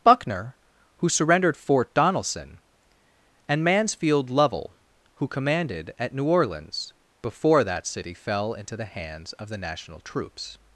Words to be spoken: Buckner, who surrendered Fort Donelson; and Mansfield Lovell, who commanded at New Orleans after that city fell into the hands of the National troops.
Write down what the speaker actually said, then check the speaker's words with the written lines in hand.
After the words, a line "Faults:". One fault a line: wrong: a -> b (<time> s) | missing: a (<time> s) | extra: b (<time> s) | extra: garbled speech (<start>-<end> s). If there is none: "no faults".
Buckner, who surrendered Fort Donelson; and Mansfield Lovell, who commanded at New Orleans before that city fell into the hands of the National troops.
Faults:
wrong: after -> before (7.2 s)